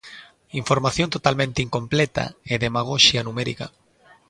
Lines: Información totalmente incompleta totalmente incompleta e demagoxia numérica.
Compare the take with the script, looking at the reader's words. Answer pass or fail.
fail